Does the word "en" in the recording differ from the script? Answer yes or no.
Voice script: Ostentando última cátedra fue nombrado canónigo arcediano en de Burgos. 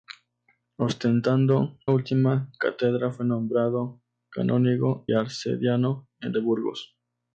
no